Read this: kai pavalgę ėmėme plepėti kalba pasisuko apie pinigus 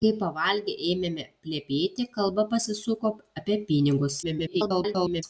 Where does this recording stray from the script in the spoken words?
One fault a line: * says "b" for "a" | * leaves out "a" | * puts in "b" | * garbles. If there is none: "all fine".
* garbles